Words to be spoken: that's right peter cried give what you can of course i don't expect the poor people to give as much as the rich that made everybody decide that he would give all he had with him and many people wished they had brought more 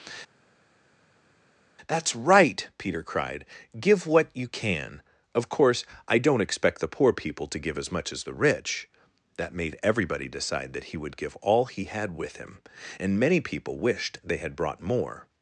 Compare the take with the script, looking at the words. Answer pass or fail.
pass